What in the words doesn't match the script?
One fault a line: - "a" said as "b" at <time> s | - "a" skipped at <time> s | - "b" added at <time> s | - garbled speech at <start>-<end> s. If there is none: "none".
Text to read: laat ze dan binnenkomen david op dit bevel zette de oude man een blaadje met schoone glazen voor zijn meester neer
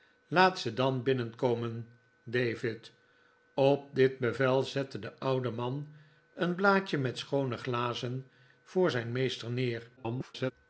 - garbled speech at 10.0-10.5 s